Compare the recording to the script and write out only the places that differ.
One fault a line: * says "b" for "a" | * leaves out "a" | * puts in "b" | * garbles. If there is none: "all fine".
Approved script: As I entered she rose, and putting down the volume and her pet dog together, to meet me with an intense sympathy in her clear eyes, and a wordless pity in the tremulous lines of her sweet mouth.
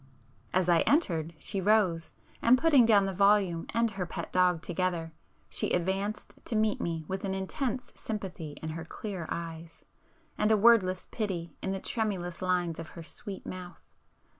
* puts in "she advanced"